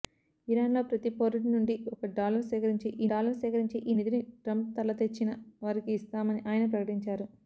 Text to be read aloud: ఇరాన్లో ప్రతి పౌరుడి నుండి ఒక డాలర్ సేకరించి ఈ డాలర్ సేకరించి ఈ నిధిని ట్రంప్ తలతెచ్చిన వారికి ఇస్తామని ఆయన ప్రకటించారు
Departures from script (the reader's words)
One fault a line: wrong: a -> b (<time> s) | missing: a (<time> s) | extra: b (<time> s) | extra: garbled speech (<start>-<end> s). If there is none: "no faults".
no faults